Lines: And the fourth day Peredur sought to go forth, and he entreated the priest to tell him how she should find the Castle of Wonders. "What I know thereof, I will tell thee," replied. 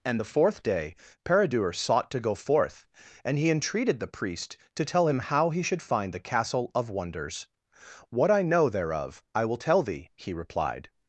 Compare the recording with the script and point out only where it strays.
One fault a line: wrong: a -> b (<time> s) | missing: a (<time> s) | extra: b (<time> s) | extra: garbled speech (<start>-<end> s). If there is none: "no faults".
wrong: she -> he (5.5 s)
extra: he (10.2 s)